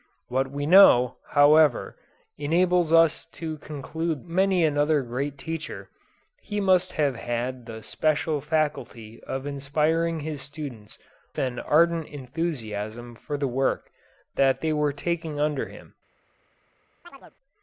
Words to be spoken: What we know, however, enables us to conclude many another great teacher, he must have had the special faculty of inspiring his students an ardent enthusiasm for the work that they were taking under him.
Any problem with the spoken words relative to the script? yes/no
no